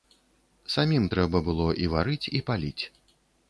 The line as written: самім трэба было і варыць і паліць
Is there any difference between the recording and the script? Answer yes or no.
no